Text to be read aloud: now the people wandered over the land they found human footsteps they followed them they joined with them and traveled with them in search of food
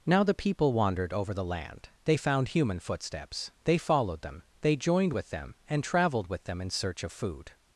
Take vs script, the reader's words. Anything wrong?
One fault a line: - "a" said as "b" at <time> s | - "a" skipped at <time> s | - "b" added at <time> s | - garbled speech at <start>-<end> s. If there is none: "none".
none